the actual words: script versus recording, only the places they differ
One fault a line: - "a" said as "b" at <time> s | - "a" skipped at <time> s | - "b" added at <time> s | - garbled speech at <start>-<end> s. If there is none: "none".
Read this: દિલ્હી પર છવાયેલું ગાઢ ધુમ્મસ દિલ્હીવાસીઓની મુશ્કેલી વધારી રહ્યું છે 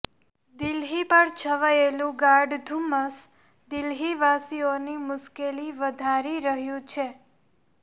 none